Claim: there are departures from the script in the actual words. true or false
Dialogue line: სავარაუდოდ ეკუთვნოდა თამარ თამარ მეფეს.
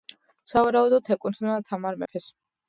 true